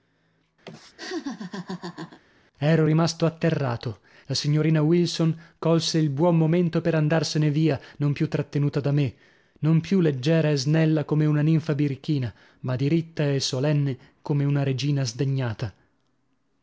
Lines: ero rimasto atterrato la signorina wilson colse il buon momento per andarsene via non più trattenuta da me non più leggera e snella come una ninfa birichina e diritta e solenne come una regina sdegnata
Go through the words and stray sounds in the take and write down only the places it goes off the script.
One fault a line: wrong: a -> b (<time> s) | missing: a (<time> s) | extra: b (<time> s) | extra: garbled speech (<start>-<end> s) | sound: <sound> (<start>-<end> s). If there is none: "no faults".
sound: laugh (0.6-2.2 s)
wrong: e -> ma (12.6 s)